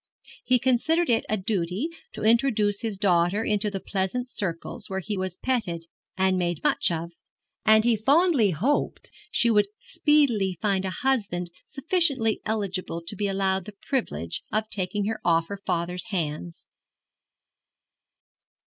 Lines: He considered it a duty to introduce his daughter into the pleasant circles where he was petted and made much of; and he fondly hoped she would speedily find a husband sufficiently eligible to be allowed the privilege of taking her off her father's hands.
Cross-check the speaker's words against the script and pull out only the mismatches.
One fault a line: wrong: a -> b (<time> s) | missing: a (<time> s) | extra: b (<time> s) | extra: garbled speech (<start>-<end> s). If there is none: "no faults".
no faults